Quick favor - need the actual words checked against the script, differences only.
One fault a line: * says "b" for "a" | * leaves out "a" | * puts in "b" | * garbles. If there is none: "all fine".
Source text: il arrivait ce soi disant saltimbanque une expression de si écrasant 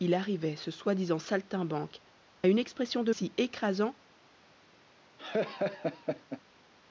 all fine